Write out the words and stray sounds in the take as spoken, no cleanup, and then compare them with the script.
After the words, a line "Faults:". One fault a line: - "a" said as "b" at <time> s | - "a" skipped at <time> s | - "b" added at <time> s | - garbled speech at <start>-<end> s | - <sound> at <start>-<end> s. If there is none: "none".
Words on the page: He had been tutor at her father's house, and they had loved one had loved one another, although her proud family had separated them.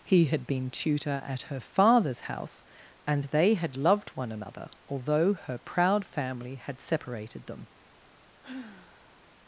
He had been tutor at her father's house, and they had loved one another, although her proud family had separated them.
Faults:
- "had loved one" skipped at 4.3 s
- sigh at 8.4-9.3 s